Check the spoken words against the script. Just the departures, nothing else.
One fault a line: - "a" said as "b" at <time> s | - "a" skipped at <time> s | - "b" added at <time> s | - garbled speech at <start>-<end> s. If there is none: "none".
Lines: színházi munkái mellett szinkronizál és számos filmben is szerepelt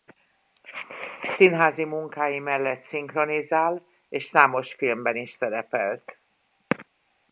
none